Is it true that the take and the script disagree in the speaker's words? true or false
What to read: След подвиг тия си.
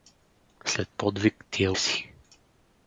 false